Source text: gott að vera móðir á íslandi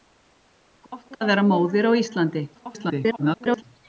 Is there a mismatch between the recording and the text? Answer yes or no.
yes